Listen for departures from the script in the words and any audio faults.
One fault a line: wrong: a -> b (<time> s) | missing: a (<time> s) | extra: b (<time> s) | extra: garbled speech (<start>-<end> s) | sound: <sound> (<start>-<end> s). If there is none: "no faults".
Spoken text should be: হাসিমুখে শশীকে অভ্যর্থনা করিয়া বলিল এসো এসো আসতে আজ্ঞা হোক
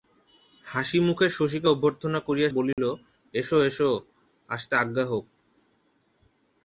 sound: dropout (2.7-2.8 s)